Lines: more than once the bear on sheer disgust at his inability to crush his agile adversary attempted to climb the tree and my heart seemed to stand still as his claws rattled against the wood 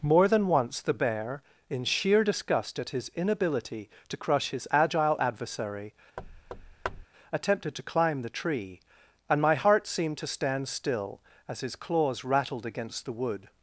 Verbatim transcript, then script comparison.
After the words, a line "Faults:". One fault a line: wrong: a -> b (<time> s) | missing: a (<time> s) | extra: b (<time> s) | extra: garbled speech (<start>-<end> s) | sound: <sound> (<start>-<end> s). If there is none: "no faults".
more than once the bear in sheer disgust at his inability to crush his agile adversary attempted to climb the tree and my heart seemed to stand still as his claws rattled against the wood
Faults:
wrong: on -> in (1.7 s)
sound: thud (6.2-7.1 s)